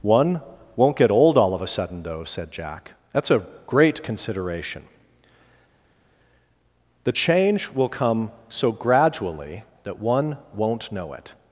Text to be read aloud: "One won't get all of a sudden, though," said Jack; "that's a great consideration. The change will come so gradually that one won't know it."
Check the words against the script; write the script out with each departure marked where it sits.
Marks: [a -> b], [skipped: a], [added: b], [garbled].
"One won't get [added: old] all of a sudden, though," said Jack; "that's a great consideration. The change will come so gradually that one won't know it."